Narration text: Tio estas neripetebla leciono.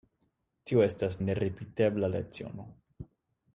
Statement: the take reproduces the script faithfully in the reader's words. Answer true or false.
true